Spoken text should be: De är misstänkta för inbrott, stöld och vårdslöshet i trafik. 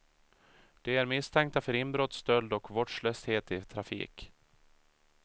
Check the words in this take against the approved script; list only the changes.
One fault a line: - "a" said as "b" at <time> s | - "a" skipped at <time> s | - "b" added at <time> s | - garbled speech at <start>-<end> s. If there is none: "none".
none